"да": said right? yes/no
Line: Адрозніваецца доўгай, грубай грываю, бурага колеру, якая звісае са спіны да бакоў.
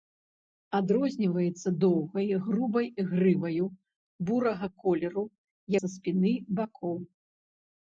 no